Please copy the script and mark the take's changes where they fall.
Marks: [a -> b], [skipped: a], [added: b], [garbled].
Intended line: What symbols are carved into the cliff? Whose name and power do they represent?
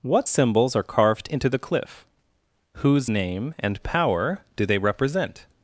What symbols are carved into the cliff? Whose name and power do they represent?